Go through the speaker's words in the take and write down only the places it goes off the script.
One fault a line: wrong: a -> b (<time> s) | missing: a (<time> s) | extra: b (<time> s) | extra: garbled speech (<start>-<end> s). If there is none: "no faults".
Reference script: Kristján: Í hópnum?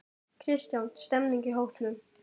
extra: Stemmning (1.0 s)